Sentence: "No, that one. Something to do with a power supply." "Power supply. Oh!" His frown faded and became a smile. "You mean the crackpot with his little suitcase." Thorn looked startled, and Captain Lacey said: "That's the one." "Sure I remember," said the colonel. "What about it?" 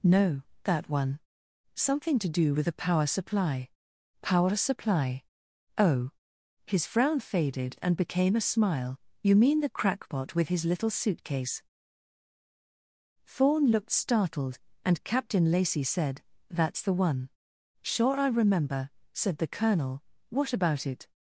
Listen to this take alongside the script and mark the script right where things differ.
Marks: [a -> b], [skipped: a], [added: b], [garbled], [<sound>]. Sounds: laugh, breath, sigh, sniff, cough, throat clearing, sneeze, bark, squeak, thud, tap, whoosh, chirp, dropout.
"No, that one. Something to do with a power supply." "Power supply. Oh!" His frown faded and became a smile. "You mean the crackpot with his little suitcase." Thorn looked startled, and Captain Lacey said: "That's the one." "Sure I remember," said the colonel. "What about it?"